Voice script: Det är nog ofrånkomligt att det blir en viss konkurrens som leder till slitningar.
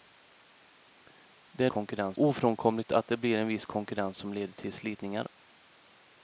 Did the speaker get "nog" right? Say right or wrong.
wrong